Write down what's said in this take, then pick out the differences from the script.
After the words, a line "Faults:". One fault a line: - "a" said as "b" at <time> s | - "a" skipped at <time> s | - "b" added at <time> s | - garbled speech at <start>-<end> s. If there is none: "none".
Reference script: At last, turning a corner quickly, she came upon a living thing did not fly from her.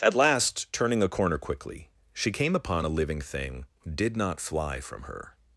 At last, turning a corner quickly, she came upon a living thing did not fly from her.
Faults:
none